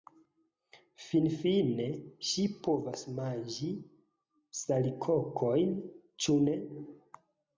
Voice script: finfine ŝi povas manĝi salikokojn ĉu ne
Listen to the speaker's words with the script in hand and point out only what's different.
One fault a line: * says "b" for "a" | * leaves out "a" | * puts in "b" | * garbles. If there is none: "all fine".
all fine